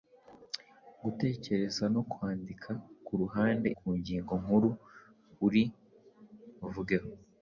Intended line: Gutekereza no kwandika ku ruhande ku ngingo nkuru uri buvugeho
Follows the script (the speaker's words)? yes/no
yes